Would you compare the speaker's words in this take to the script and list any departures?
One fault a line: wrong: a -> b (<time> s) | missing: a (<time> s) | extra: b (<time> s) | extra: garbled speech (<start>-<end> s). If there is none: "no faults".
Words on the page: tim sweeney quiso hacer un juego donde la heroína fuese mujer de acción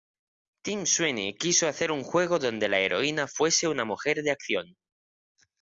extra: una (3.7 s)